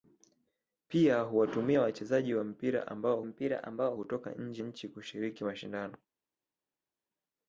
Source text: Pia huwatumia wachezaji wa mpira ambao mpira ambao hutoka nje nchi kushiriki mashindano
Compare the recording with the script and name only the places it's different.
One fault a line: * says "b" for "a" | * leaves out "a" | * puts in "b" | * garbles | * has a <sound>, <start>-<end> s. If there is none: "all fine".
all fine